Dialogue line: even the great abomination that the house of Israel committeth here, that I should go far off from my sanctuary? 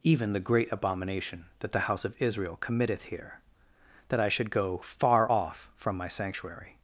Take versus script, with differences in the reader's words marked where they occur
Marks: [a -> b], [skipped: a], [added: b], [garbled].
even the great abomination that the house of Israel committeth here, that I should go far off from my sanctuary?